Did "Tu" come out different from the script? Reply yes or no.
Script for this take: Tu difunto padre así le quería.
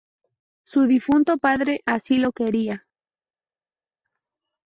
yes